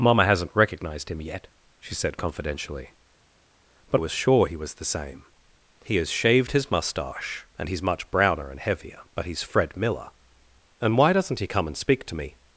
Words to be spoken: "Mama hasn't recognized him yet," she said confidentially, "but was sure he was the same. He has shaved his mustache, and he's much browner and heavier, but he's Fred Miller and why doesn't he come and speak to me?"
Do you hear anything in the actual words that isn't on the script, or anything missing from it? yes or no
no